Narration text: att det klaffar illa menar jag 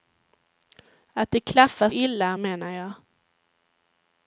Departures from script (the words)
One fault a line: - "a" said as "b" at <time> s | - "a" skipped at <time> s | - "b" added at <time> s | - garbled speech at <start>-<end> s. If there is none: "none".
none